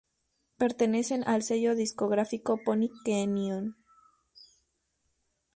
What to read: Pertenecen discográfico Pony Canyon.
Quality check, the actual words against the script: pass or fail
fail